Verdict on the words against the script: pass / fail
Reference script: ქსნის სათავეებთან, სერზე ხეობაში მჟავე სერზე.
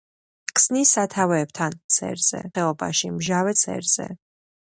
pass